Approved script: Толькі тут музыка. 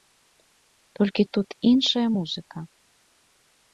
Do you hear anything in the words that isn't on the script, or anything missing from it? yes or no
yes